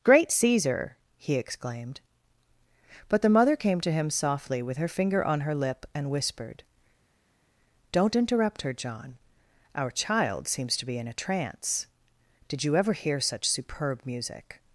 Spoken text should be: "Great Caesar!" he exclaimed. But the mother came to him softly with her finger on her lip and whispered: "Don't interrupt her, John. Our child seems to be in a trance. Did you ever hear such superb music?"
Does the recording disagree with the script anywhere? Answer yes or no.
no